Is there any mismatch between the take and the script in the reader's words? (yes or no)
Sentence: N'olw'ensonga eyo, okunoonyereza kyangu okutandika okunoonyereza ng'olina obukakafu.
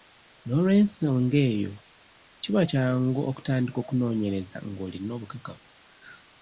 yes